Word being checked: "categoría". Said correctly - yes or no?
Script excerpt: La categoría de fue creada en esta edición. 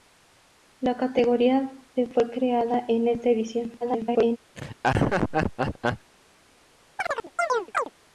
yes